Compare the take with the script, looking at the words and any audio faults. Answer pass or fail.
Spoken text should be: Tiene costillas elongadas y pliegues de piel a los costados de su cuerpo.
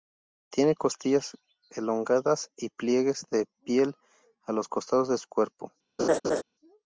fail